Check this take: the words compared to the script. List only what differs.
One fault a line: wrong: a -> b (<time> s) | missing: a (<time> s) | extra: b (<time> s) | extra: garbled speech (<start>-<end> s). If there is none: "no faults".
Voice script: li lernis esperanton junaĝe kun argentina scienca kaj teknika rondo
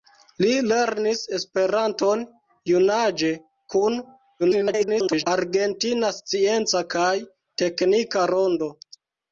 extra: garbled speech (4.4-5.3 s)